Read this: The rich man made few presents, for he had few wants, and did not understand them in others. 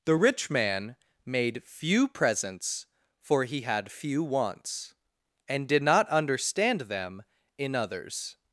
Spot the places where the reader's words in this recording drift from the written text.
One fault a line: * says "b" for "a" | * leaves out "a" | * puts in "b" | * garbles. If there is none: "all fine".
all fine